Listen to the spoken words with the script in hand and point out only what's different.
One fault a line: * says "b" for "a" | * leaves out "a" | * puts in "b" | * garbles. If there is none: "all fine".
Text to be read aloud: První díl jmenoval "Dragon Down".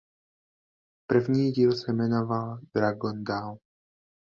* puts in "se"